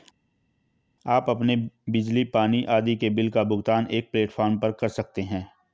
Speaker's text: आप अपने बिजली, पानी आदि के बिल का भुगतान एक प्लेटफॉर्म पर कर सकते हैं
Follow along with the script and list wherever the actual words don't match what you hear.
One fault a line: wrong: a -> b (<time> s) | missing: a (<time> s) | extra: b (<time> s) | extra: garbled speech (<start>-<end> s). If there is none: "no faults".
no faults